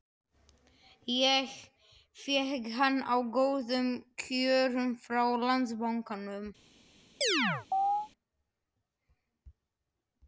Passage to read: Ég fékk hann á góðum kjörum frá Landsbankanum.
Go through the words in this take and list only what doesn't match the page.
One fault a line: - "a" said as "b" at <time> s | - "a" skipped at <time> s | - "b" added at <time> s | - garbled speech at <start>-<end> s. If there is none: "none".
none